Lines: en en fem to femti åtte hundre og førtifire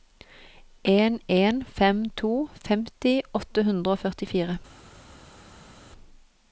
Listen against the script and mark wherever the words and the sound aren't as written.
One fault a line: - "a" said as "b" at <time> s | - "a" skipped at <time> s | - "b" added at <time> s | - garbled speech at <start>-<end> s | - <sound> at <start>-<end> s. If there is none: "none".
none